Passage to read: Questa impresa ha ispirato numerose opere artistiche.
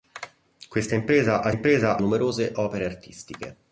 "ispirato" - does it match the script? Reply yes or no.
no